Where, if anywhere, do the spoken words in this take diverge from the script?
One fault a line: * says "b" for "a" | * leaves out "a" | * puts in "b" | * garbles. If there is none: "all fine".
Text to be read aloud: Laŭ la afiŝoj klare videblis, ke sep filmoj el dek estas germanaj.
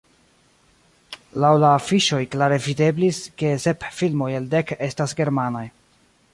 all fine